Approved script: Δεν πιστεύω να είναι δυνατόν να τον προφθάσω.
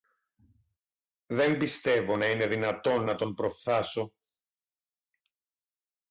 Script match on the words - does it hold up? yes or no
yes